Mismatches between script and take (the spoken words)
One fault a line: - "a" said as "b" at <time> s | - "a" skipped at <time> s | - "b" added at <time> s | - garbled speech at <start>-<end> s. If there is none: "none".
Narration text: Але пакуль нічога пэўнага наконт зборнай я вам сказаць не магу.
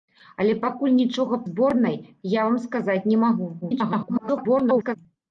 - "пэўнага наконт" skipped at 1.4 s
- garbled speech at 3.6-5.0 s